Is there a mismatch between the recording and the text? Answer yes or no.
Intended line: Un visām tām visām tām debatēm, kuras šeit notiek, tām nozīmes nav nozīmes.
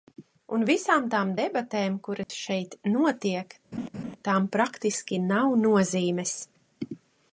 yes